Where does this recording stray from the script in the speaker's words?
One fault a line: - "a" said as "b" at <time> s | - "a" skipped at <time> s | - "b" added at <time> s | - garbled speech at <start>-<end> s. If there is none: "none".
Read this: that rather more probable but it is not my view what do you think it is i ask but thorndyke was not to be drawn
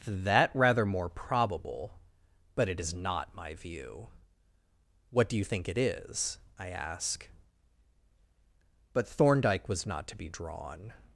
none